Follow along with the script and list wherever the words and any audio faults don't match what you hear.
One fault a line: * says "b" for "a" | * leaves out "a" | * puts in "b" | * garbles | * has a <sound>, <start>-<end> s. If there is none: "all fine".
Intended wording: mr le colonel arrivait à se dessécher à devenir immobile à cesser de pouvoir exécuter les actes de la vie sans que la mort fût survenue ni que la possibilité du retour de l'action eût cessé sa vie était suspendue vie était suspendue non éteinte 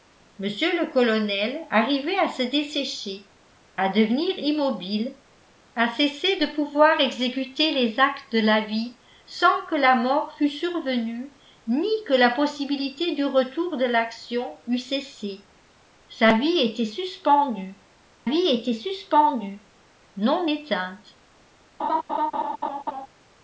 * has a laugh, 21.8-23.1 s